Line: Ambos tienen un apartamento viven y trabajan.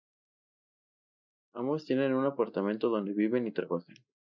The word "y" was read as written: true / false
true